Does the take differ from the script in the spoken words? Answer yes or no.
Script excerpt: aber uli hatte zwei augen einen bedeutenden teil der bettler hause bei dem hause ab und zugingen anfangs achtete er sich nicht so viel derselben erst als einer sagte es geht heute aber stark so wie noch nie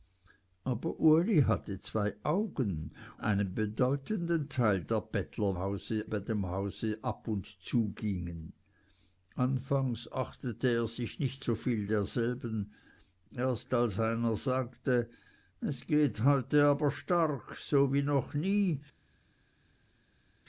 no